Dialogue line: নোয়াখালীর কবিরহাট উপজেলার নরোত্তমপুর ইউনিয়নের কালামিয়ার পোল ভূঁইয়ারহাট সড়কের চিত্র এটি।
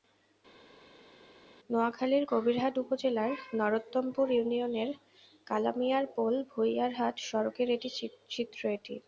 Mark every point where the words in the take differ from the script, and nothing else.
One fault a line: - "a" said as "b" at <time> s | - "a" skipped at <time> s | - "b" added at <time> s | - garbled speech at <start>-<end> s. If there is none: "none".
none